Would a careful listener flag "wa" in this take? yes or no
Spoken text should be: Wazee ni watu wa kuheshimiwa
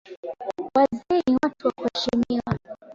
no